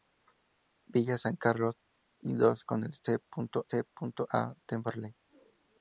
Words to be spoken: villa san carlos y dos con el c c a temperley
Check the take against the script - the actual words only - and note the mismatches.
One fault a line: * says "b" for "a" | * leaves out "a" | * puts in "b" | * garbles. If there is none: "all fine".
all fine